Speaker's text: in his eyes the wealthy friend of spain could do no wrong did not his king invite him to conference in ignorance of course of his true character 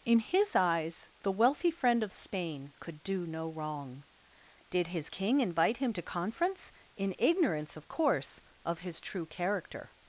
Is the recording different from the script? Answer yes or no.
yes